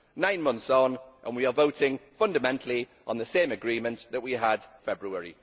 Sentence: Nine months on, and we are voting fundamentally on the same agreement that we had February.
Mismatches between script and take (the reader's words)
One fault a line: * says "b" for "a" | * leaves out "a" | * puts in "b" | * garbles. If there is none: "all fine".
all fine